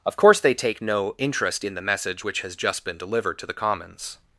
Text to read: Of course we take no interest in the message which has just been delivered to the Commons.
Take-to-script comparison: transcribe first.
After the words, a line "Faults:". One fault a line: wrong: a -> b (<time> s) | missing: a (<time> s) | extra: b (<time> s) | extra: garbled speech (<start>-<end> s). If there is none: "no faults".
Of course they take no interest in the message which has just been delivered to the Commons.
Faults:
wrong: we -> they (0.4 s)